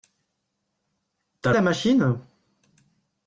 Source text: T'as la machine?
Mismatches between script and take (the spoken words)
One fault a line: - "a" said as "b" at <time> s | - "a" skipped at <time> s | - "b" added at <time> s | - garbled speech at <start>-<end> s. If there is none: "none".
none